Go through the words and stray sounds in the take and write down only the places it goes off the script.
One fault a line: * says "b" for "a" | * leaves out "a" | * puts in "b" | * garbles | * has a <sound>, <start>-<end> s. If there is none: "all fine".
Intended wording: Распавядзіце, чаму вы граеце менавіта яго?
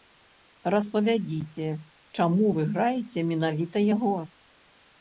all fine